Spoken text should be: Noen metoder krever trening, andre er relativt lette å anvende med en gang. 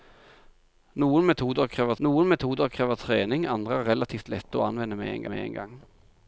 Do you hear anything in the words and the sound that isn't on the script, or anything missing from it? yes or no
yes